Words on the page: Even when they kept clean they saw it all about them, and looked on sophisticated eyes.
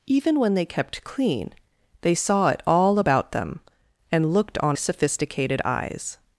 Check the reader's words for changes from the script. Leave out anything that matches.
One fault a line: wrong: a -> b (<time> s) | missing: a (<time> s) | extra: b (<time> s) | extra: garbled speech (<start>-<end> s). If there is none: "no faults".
no faults